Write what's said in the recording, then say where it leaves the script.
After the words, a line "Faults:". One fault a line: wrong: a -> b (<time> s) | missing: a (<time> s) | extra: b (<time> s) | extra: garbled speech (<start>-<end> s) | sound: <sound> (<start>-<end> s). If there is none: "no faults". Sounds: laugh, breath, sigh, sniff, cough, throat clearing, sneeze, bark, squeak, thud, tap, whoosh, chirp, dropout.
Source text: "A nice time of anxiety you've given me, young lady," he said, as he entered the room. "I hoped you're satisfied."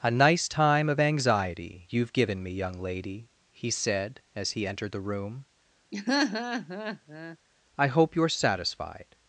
"A nice time of anxiety you've given me, young lady," he said, as he entered the room. "I hope you're satisfied."
Faults:
sound: laugh (5.9-7.4 s)
wrong: hoped -> hope (7.9 s)